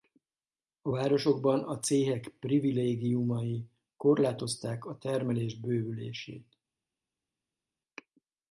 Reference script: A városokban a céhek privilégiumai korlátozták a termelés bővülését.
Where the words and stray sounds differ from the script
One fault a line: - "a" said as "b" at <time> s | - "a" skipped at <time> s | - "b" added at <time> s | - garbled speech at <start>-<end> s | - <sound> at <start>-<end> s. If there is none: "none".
none